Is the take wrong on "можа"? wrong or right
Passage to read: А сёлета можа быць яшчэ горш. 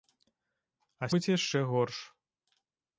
wrong